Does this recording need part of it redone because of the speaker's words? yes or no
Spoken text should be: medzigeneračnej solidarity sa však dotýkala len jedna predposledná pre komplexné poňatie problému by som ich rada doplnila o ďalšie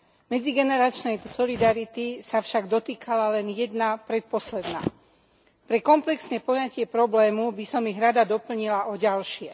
no